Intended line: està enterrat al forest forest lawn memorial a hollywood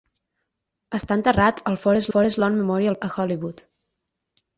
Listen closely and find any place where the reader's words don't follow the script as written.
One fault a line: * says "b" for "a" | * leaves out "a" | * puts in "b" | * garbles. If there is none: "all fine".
all fine